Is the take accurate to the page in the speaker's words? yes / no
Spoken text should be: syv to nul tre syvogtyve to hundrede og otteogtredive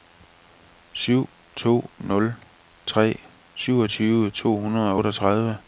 yes